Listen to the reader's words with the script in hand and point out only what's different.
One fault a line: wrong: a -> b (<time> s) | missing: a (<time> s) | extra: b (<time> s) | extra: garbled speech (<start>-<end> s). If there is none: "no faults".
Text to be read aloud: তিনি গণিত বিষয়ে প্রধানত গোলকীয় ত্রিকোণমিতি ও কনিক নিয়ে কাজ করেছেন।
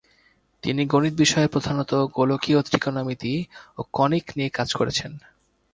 no faults